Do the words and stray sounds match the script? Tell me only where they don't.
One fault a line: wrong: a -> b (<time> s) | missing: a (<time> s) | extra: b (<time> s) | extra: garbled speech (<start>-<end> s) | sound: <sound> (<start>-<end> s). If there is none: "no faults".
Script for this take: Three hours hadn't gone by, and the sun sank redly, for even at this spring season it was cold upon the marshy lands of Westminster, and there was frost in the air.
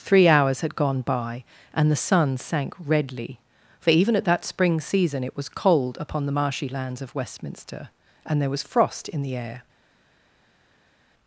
wrong: hadn't -> had (0.6 s)
wrong: this -> that (4.2 s)